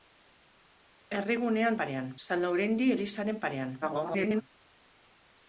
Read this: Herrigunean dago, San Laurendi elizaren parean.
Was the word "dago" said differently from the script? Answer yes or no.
yes